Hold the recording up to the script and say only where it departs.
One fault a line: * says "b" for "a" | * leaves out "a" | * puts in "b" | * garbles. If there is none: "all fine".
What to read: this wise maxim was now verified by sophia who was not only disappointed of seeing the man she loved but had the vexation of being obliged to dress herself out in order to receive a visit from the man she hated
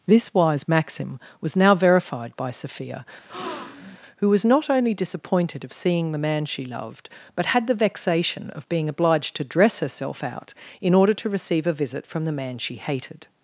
all fine